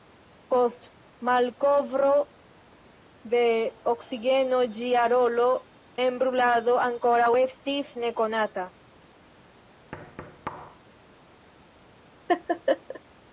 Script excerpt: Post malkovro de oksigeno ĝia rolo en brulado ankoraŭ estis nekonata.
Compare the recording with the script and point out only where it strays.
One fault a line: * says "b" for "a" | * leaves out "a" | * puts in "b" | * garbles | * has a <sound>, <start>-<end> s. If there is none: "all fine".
* has a thud, 9.9-10.8 s
* has a laugh, 12.3-13.0 s